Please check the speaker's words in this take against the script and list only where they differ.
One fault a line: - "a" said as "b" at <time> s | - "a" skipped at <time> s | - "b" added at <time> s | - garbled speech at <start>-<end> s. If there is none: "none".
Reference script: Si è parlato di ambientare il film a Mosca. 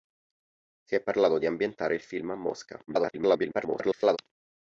- garbled speech at 2.9-4.2 s